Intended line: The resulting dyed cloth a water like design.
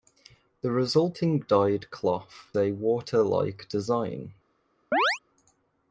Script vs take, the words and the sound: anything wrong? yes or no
yes